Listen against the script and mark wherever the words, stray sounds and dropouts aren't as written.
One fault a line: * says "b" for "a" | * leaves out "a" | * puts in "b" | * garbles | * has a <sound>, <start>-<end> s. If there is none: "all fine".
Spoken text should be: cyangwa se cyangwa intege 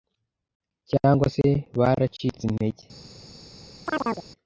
* says "baracitse" for "cyangwa"
* has a chirp, 3.9-4.3 s